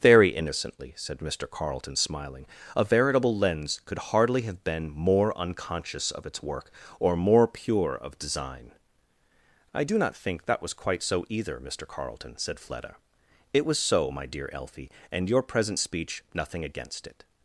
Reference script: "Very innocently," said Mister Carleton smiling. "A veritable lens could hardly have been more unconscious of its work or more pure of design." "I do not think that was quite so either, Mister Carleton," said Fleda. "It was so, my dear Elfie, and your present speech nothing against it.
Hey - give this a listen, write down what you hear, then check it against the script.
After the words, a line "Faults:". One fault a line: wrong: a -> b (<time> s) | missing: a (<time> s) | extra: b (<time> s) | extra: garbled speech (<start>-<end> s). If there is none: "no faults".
"Very innocently," said Mister Carleton smiling. "A veritable lens could hardly have been more unconscious of its work or more pure of design." "I do not think that was quite so either, Mister Carleton," said Fleda. "It was so, my dear Elfie, and your present speech nothing against it.
Faults:
no faults